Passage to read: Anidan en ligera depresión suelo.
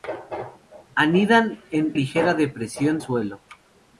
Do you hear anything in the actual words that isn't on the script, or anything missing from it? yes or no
no